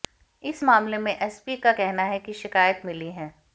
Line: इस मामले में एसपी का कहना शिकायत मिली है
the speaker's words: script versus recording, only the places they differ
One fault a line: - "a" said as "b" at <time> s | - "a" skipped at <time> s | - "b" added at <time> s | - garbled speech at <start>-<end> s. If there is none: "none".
- "है कि" added at 2.0 s